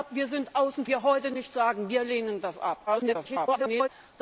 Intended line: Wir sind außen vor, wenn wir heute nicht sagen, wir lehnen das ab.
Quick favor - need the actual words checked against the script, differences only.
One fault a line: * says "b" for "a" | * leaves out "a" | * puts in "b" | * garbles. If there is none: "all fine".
* leaves out "vor wenn"
* garbles